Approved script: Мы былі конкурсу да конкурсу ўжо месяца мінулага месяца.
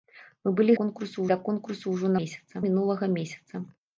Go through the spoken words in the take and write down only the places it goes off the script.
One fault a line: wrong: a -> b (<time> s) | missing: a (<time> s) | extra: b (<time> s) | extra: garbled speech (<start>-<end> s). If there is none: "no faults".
no faults